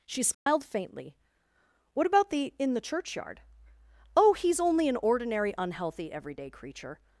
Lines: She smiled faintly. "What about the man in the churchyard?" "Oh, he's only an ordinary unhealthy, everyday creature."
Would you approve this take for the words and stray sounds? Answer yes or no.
no